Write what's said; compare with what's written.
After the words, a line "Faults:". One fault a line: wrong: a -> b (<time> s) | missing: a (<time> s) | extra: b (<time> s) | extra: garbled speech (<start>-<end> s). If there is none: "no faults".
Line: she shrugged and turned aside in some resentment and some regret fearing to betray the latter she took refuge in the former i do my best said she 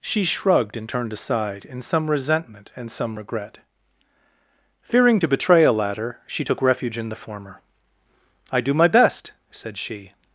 she shrugged and turned aside in some resentment and some regret fearing to betray a latter she took refuge in the former i do my best said she
Faults:
wrong: the -> a (5.6 s)